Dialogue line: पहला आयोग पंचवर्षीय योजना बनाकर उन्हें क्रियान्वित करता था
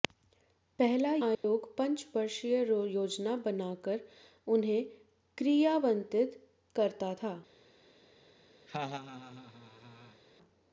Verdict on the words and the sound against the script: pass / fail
fail